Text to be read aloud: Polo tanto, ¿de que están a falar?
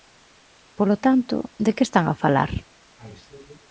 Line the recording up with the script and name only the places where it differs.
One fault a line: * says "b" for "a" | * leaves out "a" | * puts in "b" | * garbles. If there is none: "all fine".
all fine